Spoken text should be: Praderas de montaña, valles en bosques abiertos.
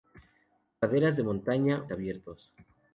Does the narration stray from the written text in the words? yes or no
yes